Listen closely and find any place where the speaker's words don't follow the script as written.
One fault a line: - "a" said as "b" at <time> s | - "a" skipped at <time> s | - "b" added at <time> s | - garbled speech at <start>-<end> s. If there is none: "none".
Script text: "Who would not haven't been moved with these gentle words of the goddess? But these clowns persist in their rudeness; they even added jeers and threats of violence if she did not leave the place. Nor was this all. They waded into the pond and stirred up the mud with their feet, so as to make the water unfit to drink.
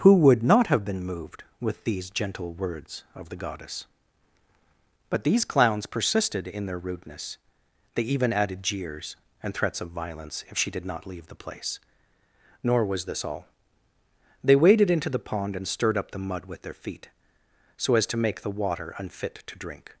- "haven't" said as "have" at 0.7 s
- "persist" said as "persisted" at 5.8 s